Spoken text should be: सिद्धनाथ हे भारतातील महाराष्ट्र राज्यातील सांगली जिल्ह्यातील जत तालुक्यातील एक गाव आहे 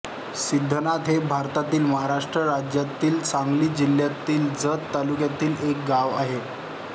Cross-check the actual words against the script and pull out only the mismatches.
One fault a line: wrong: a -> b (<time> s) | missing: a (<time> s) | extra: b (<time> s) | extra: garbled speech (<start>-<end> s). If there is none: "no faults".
no faults